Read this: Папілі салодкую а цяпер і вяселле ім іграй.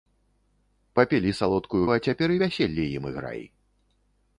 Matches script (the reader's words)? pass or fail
pass